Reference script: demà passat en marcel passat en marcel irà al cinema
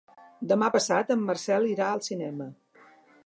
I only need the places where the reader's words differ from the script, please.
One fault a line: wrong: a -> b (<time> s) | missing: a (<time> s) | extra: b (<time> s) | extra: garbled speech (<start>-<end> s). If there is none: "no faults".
missing: passat en marcel (1.7 s)